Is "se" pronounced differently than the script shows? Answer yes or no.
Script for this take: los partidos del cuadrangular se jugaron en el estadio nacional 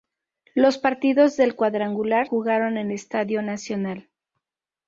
yes